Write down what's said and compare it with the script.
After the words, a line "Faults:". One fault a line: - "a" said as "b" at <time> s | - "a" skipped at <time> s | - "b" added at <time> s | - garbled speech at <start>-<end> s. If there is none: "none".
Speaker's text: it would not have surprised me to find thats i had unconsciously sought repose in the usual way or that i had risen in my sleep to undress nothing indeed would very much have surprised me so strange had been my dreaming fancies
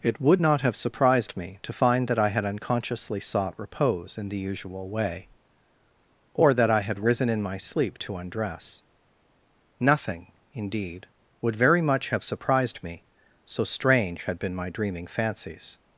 it would not have surprised me to find that i had unconsciously sought repose in the usual way or that i had risen in my sleep to undress nothing indeed would very much have surprised me so strange had been my dreaming fancies
Faults:
- "thats" said as "that" at 2.1 s